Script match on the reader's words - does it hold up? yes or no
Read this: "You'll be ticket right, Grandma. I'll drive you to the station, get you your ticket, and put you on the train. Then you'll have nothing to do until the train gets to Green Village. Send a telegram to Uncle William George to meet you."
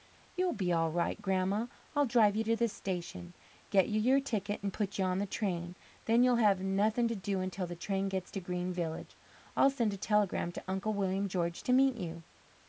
no